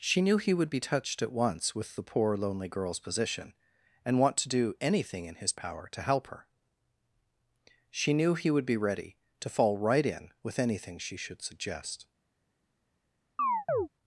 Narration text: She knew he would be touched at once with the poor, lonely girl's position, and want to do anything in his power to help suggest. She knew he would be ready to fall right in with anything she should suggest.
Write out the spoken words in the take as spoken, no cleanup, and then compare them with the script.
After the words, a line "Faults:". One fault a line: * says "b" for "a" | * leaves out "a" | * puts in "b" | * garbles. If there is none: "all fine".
She knew he would be touched at once with the poor, lonely girl's position, and want to do anything in his power to help her. She knew he would be ready to fall right in with anything she should suggest.
Faults:
* says "her" for "suggest"